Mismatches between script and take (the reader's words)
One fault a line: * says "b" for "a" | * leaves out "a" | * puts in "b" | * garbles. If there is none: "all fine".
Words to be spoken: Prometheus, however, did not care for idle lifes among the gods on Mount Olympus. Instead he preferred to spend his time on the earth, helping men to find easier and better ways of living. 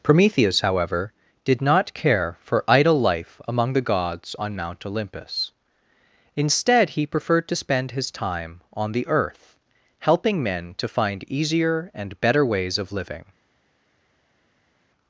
* says "life" for "lifes"